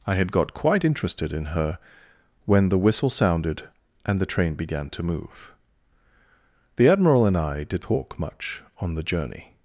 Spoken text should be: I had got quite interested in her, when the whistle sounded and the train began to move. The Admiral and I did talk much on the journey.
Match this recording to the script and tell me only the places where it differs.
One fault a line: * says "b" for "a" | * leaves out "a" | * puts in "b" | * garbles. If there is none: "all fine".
all fine